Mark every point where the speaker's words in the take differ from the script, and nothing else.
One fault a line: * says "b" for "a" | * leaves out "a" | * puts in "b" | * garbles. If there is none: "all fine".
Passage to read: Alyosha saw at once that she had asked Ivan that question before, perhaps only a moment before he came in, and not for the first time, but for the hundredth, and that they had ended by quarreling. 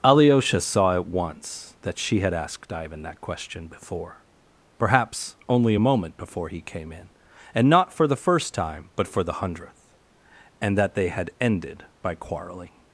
all fine